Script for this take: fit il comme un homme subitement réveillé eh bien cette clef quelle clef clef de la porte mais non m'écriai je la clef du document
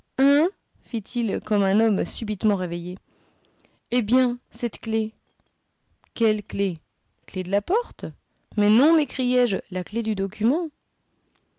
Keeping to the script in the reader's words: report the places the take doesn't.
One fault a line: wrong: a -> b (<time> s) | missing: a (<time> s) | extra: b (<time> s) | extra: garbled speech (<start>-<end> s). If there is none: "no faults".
no faults